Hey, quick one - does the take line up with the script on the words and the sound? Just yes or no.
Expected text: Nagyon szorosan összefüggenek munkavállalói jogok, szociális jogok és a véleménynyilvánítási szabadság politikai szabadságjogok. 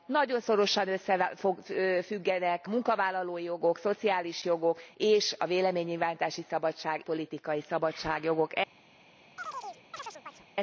no